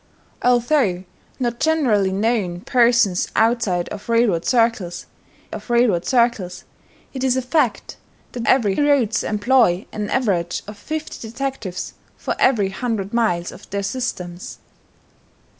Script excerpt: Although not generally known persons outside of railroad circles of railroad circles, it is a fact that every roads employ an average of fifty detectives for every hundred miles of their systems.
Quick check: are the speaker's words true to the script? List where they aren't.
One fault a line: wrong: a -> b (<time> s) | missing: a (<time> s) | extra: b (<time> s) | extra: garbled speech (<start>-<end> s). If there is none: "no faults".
no faults